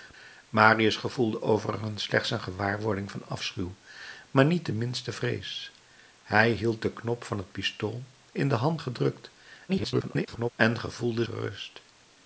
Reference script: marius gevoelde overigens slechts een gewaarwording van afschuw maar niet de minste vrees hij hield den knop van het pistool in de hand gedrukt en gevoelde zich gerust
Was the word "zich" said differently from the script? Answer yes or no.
yes